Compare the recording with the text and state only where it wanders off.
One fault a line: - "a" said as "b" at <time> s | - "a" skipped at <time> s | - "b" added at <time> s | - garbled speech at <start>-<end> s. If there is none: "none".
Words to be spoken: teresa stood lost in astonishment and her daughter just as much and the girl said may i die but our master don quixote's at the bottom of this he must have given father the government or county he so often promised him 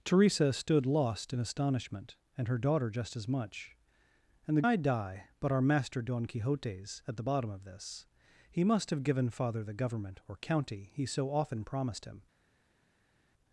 - "girl said may" skipped at 4.6 s